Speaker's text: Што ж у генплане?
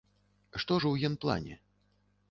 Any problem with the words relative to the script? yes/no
no